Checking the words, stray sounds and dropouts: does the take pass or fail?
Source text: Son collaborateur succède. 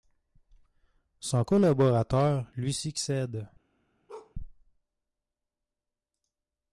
fail